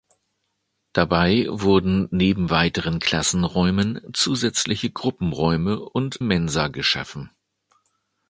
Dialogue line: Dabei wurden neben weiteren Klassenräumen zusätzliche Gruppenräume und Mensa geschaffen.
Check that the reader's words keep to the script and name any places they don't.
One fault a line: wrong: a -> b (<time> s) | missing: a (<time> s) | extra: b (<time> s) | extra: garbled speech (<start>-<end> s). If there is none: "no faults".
no faults